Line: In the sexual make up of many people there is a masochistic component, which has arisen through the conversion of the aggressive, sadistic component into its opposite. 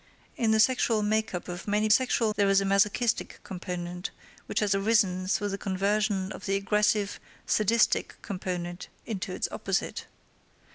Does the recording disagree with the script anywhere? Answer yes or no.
yes